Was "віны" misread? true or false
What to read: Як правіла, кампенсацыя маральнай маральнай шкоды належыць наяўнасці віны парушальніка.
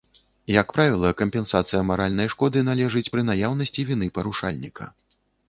false